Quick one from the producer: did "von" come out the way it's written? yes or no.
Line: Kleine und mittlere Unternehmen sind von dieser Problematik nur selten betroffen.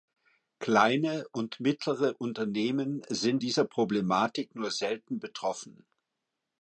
no